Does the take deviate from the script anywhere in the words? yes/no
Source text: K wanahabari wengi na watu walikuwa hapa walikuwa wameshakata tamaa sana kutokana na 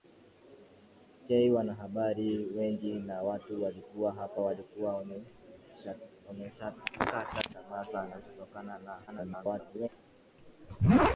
yes